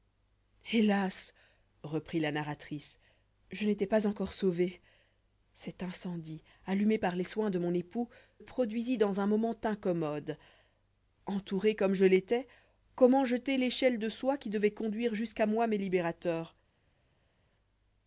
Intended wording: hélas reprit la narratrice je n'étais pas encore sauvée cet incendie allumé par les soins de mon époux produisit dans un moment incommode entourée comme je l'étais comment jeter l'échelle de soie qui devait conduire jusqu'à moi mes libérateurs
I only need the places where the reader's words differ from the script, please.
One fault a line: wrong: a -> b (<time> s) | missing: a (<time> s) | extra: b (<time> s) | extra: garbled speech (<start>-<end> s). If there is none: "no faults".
no faults